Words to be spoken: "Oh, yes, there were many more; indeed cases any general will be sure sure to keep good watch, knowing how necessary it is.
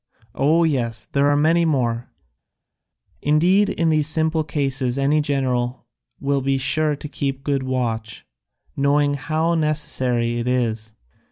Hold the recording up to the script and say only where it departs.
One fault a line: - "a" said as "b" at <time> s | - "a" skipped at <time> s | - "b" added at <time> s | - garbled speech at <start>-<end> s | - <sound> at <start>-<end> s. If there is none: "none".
- "were" said as "are" at 1.3 s
- "in these simple" added at 3.7 s
- "sure" skipped at 7.0 s